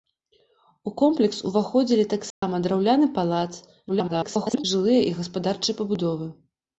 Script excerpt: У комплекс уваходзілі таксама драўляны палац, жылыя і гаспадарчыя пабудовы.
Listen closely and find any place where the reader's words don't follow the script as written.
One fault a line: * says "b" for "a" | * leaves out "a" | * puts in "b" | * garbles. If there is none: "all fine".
* garbles